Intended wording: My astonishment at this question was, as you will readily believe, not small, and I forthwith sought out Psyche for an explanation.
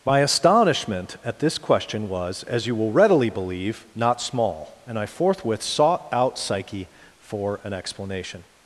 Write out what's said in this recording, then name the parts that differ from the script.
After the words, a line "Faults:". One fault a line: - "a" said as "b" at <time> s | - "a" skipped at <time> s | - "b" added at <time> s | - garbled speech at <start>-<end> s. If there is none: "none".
My astonishment at this question was, as you will readily believe, not small, and I forthwith sought out Psyche for an explanation.
Faults:
none